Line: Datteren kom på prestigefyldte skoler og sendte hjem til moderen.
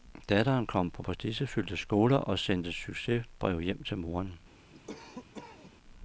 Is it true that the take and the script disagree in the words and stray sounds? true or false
true